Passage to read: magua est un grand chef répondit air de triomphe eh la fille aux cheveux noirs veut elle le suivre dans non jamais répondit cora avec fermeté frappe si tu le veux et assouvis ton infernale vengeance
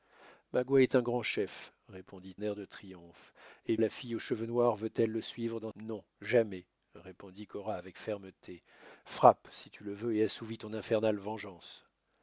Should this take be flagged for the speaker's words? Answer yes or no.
no